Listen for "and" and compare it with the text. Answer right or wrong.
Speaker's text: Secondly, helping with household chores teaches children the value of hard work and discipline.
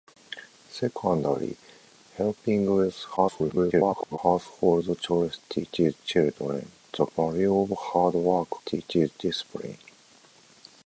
wrong